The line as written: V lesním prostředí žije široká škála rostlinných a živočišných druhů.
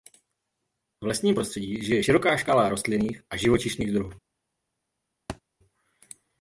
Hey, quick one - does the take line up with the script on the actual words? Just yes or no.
yes